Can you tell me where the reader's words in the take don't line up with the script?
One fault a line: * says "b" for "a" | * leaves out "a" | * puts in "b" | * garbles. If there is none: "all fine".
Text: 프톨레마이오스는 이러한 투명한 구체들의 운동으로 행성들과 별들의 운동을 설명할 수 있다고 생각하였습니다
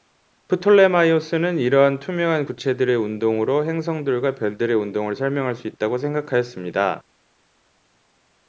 all fine